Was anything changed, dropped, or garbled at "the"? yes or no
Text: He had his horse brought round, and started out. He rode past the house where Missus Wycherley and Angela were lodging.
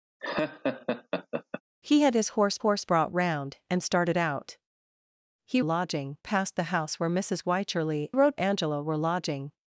no